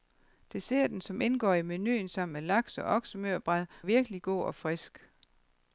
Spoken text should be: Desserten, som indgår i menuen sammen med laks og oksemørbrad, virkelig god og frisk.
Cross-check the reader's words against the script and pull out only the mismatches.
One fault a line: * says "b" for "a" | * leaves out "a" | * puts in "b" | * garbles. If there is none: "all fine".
all fine